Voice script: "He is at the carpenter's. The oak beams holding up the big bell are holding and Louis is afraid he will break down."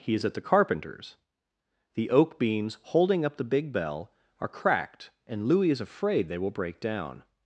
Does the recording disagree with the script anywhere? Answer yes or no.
yes